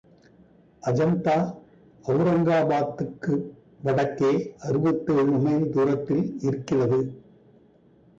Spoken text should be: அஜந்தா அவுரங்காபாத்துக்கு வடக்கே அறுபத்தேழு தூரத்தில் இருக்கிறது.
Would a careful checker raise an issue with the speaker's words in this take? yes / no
yes